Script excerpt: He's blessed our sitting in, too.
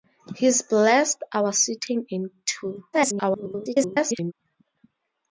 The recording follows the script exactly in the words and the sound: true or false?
false